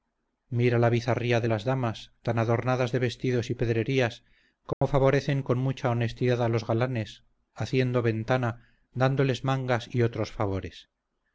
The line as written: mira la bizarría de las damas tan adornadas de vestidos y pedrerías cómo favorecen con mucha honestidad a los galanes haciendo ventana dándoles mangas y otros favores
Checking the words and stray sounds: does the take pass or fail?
fail